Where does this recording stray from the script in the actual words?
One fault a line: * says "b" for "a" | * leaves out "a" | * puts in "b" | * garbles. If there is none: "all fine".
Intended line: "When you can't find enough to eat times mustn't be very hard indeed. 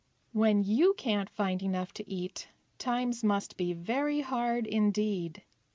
* says "must" for "mustn't"